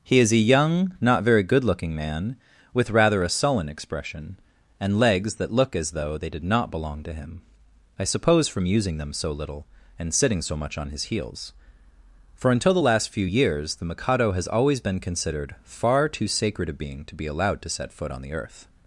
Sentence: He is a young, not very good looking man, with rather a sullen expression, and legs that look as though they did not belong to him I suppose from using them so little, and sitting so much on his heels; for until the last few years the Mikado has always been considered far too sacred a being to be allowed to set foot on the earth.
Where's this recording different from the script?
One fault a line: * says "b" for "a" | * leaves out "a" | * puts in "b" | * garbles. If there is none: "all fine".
all fine